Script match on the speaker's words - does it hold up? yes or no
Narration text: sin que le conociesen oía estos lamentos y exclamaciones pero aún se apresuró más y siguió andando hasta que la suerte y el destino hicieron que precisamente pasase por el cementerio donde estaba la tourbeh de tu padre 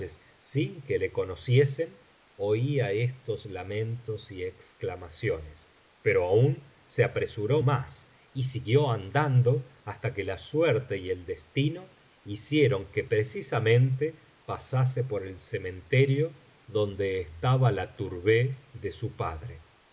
no